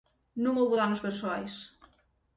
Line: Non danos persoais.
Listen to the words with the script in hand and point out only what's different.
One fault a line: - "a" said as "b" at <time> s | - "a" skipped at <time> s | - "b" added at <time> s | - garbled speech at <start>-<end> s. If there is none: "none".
- "houbo" added at 0.6 s